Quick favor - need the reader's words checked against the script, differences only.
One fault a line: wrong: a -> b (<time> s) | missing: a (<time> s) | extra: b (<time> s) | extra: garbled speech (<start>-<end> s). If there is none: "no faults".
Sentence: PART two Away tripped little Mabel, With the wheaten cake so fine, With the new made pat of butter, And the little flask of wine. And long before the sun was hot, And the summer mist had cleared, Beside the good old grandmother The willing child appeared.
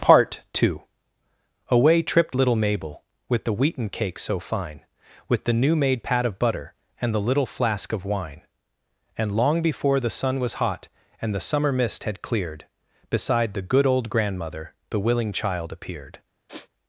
no faults